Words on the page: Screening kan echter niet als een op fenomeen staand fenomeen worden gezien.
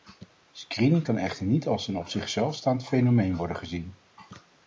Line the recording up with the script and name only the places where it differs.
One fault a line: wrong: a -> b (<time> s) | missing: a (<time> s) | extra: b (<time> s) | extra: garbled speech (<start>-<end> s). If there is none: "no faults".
wrong: fenomeen -> zichzelf (2.1 s)